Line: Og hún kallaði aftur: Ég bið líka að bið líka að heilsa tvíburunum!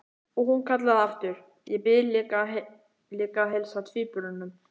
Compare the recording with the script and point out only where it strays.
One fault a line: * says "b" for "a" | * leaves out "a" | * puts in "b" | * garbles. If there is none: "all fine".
* leaves out "bið líka að"